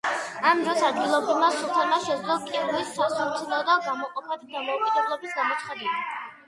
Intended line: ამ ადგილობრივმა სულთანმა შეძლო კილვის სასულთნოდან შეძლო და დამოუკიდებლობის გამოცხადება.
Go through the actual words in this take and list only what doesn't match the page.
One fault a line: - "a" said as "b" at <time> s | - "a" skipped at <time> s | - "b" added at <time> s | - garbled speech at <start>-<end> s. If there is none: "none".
- "დროს" added at 0.7 s
- "შეძლო" said as "გამოყოფა" at 3.9 s